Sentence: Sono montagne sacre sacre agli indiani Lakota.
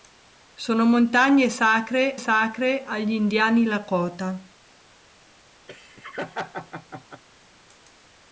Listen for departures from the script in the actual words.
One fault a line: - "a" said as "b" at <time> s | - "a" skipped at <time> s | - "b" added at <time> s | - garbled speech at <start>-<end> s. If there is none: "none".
none